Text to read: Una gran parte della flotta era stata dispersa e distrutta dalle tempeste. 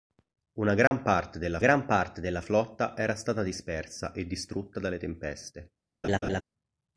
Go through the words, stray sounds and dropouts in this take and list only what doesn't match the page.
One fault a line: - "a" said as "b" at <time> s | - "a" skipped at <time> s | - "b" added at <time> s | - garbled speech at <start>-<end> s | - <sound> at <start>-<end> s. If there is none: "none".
- dropout at 0.9-0.9 s
- "gran parte della" added at 1.6 s
- laugh at 6.0-6.4 s